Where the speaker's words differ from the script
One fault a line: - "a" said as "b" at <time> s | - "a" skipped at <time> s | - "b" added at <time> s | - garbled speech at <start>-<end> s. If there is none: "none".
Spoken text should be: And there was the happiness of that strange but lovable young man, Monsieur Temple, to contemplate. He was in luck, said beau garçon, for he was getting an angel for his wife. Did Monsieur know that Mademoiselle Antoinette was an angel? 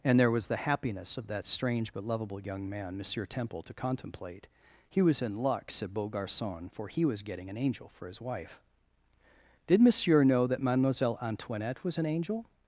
none